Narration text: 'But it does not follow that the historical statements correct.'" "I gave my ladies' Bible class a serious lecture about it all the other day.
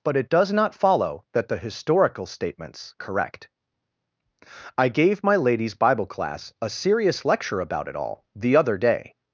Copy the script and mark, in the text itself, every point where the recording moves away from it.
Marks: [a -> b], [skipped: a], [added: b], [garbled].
'But it does not follow that the historical statements correct.'" "I gave my ladies' Bible class a serious lecture about it all the other day.